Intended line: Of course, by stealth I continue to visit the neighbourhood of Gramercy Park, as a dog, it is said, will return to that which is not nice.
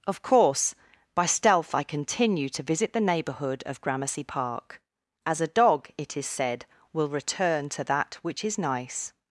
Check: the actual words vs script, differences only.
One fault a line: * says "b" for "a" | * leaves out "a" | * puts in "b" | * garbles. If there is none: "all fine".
* leaves out "not"